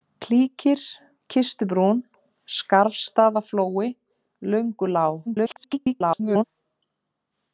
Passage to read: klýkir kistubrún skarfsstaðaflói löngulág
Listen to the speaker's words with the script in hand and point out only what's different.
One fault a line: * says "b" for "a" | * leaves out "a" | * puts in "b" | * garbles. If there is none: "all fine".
* garbles